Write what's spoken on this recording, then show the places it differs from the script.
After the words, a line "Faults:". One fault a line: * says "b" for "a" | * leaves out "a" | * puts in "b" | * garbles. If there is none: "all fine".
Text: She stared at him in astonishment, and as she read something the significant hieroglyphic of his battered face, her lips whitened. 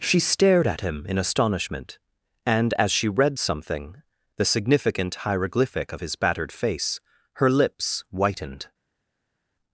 She stared at him in astonishment, and as she read something the significant hieroglyphic of his battered face, her lips whitened.
Faults:
all fine